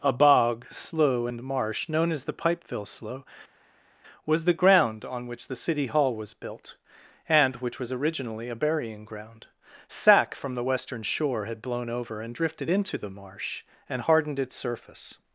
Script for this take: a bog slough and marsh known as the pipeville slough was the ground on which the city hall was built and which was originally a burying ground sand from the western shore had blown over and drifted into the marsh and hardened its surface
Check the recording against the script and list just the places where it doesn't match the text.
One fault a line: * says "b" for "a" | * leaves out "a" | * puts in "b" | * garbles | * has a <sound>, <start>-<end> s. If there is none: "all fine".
* says "sack" for "sand"